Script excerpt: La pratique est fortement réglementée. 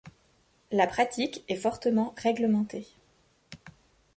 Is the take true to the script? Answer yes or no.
yes